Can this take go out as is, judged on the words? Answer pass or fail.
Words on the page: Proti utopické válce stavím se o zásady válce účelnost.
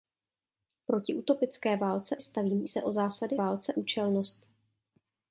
pass